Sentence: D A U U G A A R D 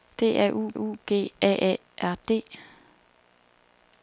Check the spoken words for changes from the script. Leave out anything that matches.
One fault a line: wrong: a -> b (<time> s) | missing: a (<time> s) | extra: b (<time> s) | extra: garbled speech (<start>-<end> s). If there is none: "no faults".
no faults